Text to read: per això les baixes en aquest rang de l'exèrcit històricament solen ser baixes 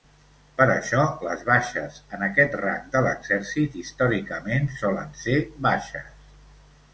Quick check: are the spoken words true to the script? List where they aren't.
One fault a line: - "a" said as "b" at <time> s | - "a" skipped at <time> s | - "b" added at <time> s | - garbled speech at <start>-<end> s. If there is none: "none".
none